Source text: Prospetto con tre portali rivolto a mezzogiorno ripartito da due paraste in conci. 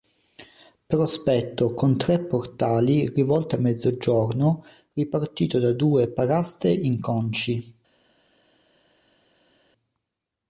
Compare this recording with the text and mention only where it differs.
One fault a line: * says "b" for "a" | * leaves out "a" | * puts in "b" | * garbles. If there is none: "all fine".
all fine